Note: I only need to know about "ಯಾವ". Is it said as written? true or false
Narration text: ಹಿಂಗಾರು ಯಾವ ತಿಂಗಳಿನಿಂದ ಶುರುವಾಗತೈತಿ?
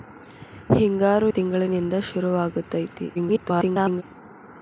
false